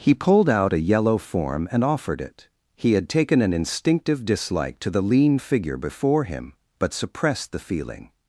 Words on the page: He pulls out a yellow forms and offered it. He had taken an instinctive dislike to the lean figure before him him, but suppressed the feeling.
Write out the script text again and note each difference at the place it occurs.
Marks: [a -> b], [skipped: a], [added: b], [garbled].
He [pulls -> pulled] out a yellow [forms -> form] and offered it. He had taken an instinctive dislike to the lean figure before him [skipped: him,] but suppressed the feeling.